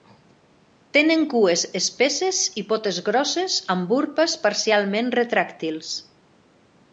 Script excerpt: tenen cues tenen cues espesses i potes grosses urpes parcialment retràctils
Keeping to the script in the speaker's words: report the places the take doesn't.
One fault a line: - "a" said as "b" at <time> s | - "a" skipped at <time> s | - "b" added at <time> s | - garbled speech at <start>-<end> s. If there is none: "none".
- "tenen cues" skipped at 1.6 s
- "amb" added at 3.8 s